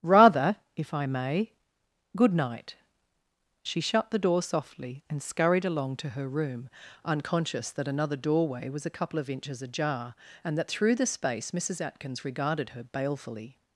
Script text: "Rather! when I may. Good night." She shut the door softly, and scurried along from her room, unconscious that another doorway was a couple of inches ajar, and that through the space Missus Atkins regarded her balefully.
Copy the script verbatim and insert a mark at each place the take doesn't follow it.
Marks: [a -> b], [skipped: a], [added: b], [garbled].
"Rather! [when -> if] I may. Good night." She shut the door softly, and scurried along [from -> to] her room, unconscious that another doorway was a couple of inches ajar, and that through the space Missus Atkins regarded her balefully.